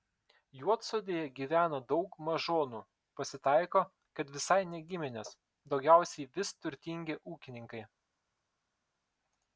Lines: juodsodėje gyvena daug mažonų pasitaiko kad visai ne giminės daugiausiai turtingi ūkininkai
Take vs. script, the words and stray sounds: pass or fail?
fail